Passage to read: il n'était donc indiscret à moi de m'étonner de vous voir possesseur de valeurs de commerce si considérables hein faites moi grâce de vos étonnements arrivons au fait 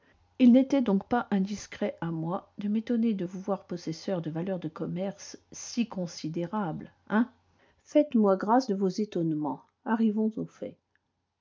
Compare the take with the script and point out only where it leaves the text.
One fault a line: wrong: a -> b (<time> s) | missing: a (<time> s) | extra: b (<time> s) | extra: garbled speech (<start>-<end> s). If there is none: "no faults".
extra: pas (1.1 s)